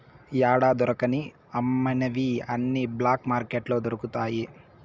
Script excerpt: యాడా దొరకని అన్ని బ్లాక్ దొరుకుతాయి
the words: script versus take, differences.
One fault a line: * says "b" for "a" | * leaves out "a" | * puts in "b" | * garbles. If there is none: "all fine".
* puts in "అమ్మనివి"
* puts in "మార్కెట్లో"